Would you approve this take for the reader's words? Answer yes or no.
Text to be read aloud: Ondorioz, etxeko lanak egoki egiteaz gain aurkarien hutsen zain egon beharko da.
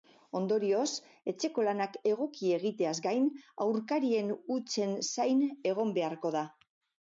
yes